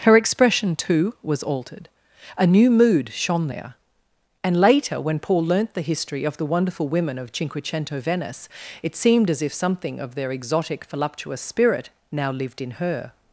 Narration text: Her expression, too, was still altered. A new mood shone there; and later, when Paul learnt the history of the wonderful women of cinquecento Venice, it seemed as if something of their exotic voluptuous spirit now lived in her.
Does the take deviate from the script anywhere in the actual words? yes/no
yes